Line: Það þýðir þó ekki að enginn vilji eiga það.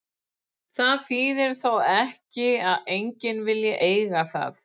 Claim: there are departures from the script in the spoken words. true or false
false